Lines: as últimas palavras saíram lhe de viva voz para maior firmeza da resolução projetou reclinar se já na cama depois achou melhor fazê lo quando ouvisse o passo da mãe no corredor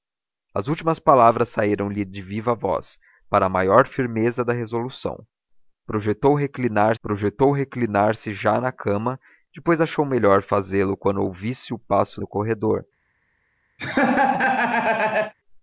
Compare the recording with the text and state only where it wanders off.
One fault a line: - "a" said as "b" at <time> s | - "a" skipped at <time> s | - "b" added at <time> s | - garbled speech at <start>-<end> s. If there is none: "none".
- "projetou reclinar" added at 7.0 s
- "da mãe" skipped at 12.2 s